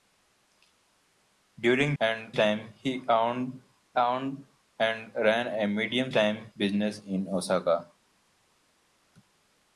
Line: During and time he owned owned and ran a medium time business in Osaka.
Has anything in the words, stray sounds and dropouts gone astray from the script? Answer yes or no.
no